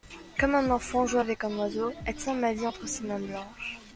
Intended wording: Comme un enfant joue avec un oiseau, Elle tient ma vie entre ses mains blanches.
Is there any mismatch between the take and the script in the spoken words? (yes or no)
no